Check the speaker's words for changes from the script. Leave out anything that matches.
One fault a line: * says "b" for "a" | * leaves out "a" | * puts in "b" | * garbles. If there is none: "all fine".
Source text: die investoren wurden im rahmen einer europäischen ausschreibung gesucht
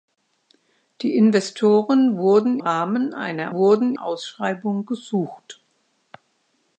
* leaves out "im"
* says "wurden" for "europäischen"